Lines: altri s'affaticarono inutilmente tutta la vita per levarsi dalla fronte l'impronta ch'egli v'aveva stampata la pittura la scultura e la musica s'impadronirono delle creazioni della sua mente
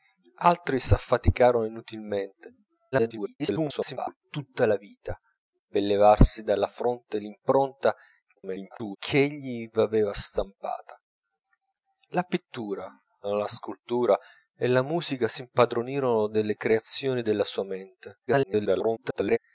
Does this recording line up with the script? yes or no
no